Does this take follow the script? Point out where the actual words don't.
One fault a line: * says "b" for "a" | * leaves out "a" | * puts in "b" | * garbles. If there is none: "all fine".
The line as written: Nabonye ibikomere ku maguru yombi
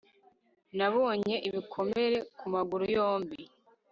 all fine